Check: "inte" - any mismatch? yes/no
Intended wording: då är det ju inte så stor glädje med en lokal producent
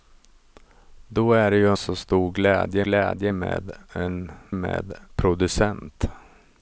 yes